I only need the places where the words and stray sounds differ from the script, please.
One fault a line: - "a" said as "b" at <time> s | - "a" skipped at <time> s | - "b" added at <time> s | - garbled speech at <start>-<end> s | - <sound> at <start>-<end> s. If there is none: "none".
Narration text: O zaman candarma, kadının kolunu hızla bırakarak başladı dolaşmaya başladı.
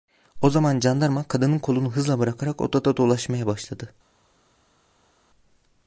- "başladı" said as "odada" at 2.6 s